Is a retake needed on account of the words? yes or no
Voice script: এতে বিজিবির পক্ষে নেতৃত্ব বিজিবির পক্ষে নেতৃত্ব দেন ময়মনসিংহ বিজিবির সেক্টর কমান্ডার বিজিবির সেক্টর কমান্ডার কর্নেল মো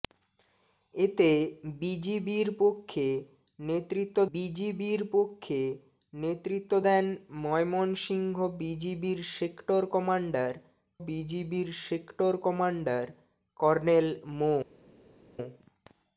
no